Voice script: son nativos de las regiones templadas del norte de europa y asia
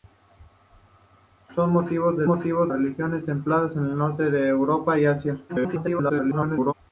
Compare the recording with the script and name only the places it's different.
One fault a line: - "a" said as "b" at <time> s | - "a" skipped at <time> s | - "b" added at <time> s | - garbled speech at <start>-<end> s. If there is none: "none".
- "las" said as "nativos" at 2.3 s
- garbled speech at 5.5-6.7 s